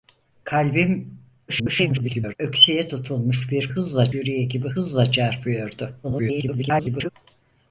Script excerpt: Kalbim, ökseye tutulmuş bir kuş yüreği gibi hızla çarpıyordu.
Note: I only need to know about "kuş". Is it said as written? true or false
false